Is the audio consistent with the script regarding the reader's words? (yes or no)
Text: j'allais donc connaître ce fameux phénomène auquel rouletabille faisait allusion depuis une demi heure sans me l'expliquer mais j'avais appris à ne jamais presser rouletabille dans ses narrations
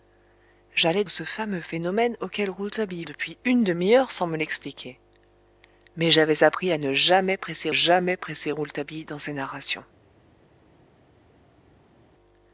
no